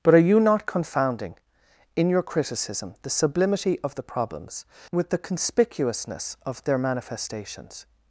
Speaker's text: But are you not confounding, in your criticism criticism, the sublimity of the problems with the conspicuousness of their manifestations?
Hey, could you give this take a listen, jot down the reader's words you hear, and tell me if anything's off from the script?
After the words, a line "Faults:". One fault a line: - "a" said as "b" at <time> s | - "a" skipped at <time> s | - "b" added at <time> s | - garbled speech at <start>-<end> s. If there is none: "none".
But are you not confounding, in your criticism, the sublimity of the problems with the conspicuousness of their manifestations?
Faults:
- "criticism" skipped at 3.0 s